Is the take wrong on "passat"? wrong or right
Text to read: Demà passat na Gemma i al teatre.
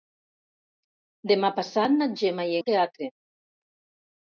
right